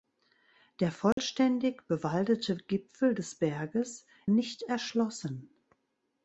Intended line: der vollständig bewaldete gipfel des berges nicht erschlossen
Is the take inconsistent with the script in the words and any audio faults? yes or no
yes